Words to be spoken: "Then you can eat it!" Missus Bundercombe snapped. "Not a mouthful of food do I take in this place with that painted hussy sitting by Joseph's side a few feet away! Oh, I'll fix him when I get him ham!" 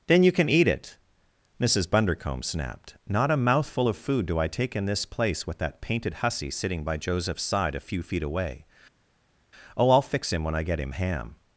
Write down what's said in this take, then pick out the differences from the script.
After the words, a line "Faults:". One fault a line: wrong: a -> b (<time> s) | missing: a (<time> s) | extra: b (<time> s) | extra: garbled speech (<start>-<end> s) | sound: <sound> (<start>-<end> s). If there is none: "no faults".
"Then you can eat it!" Missus Bundercombe snapped. "Not a mouthful of food do I take in this place with that painted hussy sitting by Joseph's side a few feet away! Oh, I'll fix him when I get him ham!"
Faults:
no faults